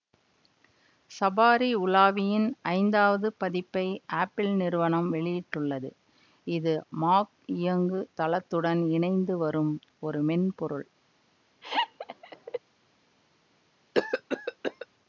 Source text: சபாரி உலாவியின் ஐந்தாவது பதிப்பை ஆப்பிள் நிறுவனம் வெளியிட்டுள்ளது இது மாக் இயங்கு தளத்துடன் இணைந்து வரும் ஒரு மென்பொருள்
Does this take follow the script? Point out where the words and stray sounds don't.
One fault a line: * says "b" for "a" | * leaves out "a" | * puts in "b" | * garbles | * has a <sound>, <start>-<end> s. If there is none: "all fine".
* has a laugh, 11.6-12.6 s
* has a cough, 13.9-14.9 s